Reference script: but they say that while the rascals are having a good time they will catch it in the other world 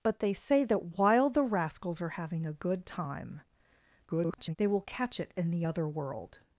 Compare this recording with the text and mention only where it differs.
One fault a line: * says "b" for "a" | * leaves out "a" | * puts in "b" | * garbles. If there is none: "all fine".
* garbles